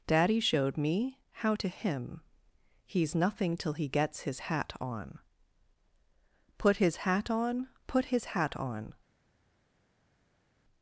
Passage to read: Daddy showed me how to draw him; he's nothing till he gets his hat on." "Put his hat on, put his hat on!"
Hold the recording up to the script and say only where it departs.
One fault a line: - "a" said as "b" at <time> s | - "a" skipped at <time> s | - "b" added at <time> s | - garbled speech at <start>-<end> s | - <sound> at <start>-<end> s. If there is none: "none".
- "draw" skipped at 1.7 s